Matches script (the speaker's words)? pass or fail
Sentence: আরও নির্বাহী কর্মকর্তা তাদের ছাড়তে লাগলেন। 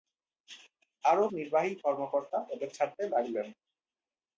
pass